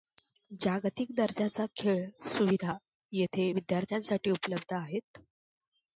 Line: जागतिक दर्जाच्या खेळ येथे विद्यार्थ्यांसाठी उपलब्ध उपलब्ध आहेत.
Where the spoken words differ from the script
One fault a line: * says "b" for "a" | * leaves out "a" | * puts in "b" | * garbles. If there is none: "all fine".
* puts in "सुविधा"
* leaves out "उपलब्ध"